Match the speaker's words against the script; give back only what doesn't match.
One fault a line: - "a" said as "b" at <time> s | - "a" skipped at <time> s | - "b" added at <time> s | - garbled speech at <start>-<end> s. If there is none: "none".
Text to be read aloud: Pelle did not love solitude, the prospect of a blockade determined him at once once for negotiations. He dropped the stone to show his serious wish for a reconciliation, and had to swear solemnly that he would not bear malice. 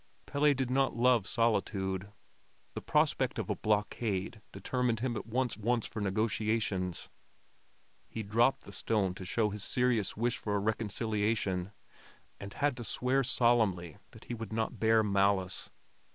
none